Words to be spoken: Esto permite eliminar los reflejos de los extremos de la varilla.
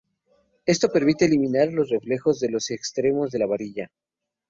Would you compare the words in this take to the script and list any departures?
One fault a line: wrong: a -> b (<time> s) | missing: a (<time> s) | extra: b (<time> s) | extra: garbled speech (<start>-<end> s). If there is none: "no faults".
no faults